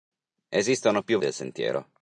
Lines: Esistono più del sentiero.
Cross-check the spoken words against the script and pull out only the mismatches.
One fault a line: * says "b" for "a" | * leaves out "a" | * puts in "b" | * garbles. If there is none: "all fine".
all fine